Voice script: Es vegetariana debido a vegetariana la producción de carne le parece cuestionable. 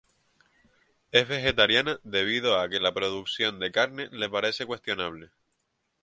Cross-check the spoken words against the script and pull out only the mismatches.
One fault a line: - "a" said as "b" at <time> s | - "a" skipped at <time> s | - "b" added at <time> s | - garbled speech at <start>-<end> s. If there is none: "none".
- "vegetariana" said as "que" at 2.7 s